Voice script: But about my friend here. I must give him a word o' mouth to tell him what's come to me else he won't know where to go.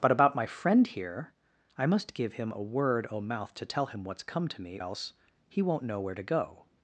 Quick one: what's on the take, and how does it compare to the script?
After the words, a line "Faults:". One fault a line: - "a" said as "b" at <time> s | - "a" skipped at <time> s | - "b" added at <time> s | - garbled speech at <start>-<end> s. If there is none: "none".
But about my friend here. I must give him a word o' mouth to tell him what's come to me else he won't know where to go.
Faults:
none